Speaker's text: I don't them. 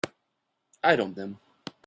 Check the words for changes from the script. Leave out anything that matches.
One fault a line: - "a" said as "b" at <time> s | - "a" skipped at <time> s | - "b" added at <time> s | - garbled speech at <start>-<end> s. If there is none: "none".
none